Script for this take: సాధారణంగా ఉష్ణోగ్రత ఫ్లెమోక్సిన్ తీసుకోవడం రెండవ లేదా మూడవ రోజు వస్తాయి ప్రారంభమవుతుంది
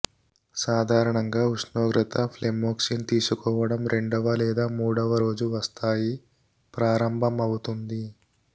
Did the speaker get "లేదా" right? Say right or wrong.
right